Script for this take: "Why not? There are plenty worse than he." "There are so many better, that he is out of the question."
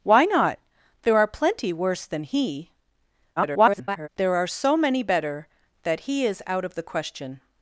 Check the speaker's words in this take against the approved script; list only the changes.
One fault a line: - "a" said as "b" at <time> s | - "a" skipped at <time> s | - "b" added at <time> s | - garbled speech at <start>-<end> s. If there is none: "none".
- garbled speech at 3.4-4.1 s